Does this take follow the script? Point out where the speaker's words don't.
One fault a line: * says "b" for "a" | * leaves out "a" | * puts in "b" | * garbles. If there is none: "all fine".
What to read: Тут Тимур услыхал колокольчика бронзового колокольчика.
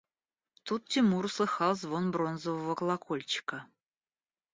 * says "звон" for "колокольчика"